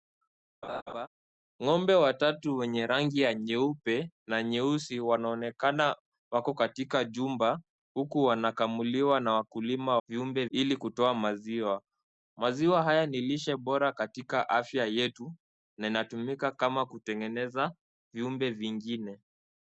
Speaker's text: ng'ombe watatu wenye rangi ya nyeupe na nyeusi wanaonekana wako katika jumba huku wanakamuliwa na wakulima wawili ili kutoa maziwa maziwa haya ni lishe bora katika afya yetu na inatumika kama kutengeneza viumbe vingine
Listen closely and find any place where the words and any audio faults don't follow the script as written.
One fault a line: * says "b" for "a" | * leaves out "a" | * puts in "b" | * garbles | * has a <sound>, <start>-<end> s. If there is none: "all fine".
* has a laugh, 0.6-1.1 s
* says "viumbe" for "wawili"